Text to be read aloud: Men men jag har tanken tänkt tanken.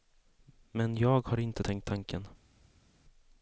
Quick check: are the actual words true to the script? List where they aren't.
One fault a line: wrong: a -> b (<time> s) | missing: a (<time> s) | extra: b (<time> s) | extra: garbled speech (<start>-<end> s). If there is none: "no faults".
missing: men (1.0 s)
wrong: tanken -> inte (1.4 s)